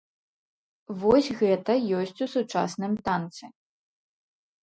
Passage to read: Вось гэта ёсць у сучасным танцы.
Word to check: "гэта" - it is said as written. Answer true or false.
true